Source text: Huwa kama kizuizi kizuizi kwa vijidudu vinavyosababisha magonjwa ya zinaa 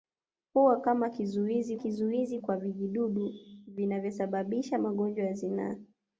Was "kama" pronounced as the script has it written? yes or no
yes